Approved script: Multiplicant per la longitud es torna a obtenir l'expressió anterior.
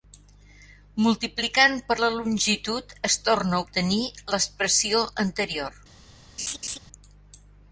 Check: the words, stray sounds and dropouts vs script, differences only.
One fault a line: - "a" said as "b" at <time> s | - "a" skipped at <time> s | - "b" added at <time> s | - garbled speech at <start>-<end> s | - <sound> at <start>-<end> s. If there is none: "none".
- laugh at 6.4-6.8 s